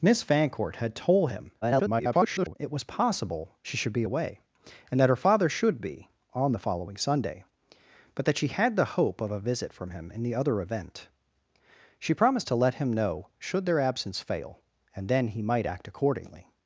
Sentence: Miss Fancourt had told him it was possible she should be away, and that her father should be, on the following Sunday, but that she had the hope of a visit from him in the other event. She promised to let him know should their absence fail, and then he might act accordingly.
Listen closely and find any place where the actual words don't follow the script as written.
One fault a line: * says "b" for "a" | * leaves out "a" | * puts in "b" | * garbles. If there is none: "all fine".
* garbles